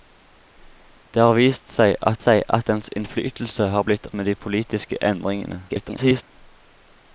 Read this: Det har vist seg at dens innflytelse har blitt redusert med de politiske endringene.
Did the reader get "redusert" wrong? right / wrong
wrong